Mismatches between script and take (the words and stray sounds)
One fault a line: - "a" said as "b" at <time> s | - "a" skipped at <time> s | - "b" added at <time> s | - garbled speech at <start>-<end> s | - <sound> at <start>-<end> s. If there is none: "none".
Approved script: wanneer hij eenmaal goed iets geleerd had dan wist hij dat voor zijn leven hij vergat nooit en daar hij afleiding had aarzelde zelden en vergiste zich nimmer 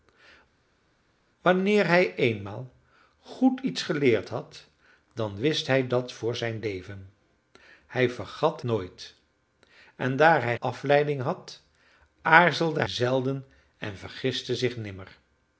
none